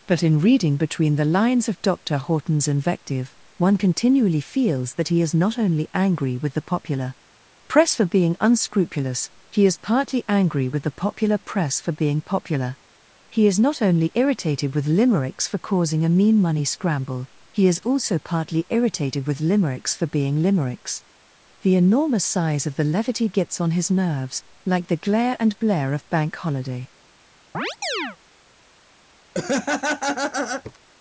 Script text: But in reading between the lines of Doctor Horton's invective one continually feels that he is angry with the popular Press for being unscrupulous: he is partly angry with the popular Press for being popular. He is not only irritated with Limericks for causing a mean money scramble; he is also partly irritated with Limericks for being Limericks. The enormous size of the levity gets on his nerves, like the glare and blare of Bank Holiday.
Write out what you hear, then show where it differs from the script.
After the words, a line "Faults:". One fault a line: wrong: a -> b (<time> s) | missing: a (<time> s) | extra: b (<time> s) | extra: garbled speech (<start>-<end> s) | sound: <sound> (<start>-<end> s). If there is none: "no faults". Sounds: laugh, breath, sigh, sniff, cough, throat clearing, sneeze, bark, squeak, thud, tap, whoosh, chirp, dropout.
But in reading between the lines of Doctor Horton's invective one continually feels that he is not only angry with the popular Press for being unscrupulous: he is partly angry with the popular Press for being popular. He is not only irritated with Limericks for causing a mean money scramble; he is also partly irritated with Limericks for being Limericks. The enormous size of the levity gets on his nerves, like the glare and blare of Bank Holiday.
Faults:
extra: not only (5.3 s)
sound: chirp (27.5-28.2 s)
sound: laugh (29.3-30.8 s)